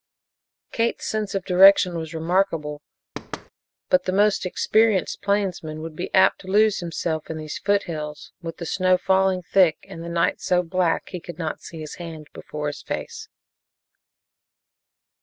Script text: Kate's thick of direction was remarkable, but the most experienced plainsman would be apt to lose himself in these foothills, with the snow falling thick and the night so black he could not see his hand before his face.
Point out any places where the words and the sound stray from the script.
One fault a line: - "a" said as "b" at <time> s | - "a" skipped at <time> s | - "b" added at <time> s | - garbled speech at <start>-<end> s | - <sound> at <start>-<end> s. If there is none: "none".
- "thick" said as "sense" at 1.1 s
- thud at 3.1-3.5 s